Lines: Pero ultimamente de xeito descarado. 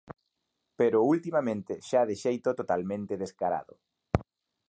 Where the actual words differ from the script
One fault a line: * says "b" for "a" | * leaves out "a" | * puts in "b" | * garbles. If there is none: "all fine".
* puts in "xa"
* puts in "totalmente"